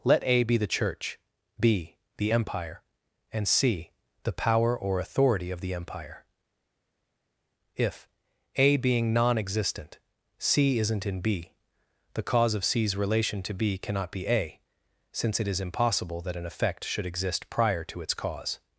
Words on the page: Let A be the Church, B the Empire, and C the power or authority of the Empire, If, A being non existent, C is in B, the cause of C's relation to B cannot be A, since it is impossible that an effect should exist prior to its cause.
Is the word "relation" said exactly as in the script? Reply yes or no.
yes